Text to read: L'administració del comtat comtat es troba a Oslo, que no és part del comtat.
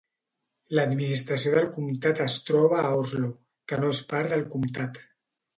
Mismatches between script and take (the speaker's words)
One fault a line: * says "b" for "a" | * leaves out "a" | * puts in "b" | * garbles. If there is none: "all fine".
* leaves out "comtat"